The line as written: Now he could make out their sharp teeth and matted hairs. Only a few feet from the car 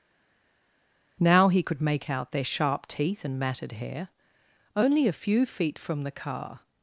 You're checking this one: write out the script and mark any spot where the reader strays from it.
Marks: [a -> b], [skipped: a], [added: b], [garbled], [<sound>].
Now he could make out their sharp teeth and matted [hairs. -> hair] Only a few feet from the car